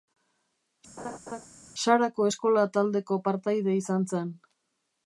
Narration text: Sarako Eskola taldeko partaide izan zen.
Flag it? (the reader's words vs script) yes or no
no